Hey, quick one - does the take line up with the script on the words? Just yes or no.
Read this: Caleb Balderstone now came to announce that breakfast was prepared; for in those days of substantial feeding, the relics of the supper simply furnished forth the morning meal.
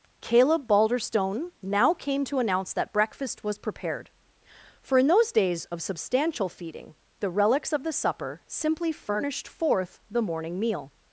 yes